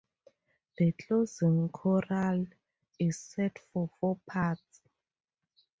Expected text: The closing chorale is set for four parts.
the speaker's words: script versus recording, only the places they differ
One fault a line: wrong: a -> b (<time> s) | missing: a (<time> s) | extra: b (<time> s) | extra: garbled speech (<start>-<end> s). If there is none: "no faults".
no faults